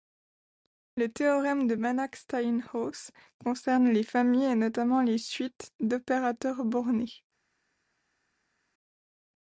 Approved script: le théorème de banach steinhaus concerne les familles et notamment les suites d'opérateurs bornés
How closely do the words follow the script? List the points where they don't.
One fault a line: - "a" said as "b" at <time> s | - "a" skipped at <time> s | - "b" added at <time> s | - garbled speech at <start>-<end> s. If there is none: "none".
none